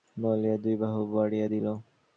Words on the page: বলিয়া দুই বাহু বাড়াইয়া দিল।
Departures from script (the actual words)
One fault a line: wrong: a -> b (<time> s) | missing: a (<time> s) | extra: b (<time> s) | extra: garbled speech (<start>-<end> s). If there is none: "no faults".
no faults